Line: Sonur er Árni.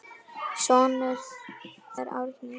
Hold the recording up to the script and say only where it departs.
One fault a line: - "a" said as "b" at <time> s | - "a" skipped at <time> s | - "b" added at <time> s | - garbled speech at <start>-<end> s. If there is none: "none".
none